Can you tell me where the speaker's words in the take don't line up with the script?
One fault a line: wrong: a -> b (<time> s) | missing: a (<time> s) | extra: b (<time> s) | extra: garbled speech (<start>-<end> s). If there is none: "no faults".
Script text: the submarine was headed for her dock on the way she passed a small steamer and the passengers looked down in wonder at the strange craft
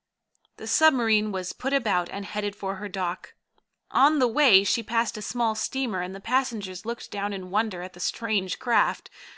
extra: put about and (1.5 s)